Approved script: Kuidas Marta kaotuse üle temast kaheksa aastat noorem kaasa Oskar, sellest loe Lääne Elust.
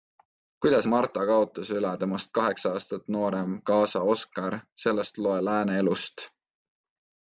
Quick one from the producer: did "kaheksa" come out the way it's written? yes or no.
yes